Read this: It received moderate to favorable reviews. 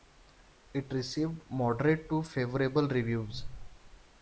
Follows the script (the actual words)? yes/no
yes